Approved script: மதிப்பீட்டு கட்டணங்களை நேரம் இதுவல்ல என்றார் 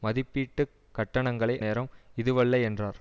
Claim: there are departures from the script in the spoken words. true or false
false